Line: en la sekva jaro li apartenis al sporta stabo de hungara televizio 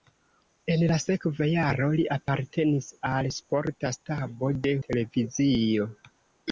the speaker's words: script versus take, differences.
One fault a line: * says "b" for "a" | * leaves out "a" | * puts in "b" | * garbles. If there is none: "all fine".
* leaves out "hungara"